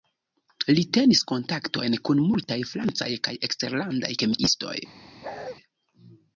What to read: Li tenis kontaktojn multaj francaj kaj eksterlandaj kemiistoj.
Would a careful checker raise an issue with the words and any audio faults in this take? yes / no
yes